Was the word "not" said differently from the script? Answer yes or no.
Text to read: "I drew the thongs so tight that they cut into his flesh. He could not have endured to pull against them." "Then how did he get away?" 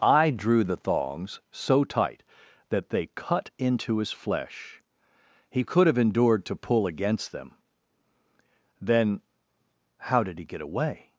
yes